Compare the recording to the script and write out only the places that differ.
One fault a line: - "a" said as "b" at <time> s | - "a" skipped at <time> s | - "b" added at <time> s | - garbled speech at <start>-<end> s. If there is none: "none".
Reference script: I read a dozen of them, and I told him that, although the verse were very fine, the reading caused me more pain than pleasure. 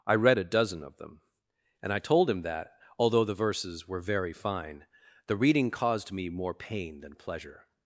- "verse" said as "verses" at 3.4 s